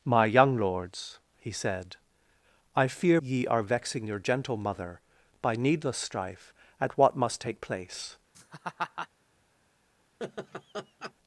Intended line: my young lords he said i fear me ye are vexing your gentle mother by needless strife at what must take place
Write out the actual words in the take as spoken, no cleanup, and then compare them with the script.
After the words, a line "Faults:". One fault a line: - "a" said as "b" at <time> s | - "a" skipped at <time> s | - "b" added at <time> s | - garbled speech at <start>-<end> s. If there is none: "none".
my young lords he said i fear ye are vexing your gentle mother by needless strife at what must take place
Faults:
- "me" skipped at 3.2 s